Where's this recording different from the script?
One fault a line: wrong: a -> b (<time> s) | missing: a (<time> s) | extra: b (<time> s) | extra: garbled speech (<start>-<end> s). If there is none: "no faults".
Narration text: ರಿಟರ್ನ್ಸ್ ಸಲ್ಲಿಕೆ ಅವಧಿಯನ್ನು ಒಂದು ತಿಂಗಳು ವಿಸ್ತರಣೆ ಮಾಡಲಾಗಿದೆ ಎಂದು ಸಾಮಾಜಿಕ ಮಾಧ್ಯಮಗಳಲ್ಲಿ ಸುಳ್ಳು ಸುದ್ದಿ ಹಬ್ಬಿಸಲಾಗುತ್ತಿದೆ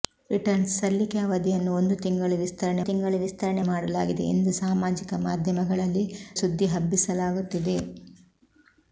extra: ತಿಂಗಳು ವಿಸ್ತರಣೆ (2.8 s)
missing: ಸುಳ್ಳು (6.1 s)